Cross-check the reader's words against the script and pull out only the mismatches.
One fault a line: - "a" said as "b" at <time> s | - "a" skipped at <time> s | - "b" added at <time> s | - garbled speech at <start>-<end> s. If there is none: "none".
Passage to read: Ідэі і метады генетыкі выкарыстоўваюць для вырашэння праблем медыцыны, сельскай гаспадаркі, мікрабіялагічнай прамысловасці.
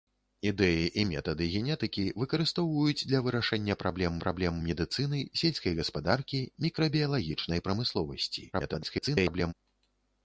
- "праблем" added at 4.2 s
- garbled speech at 8.5-9.5 s